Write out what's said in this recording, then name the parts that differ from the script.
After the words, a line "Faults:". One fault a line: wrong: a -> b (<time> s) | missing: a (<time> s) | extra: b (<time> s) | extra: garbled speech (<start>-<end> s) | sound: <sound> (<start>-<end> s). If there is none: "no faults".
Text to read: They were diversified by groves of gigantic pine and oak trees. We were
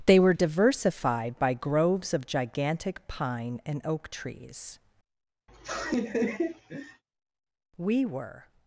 They were diversified by groves of gigantic pine and oak trees. We were
Faults:
sound: laugh (5.5-7.0 s)